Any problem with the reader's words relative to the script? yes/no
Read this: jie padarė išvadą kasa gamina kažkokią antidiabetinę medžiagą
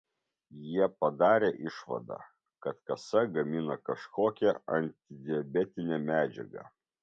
yes